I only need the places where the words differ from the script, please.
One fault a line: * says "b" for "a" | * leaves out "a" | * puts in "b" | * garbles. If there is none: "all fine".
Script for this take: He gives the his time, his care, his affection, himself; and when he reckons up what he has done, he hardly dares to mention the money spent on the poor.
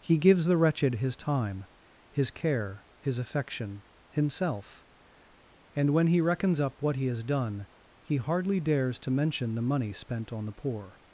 * puts in "wretched"